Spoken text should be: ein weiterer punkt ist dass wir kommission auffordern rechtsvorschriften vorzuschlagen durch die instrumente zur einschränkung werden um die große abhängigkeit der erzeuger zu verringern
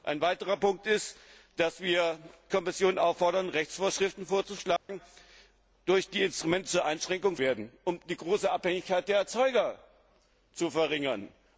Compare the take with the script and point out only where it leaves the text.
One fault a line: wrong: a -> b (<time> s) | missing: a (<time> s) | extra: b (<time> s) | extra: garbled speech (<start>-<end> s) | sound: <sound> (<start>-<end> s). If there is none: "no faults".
sound: dropout (4.8-4.9 s)